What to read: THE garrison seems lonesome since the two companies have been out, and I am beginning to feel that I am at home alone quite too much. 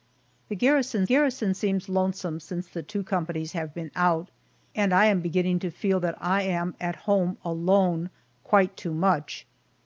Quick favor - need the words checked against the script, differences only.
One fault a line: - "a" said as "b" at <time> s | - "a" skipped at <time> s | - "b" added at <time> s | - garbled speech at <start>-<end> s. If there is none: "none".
- "garrison" added at 1.0 s